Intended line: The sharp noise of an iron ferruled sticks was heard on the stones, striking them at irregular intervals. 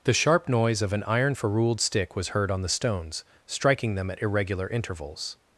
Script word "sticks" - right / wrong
wrong